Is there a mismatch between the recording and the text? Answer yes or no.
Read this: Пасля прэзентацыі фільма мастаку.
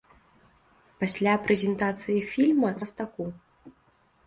no